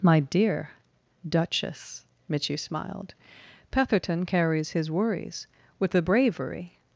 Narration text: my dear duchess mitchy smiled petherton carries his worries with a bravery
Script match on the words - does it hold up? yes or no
yes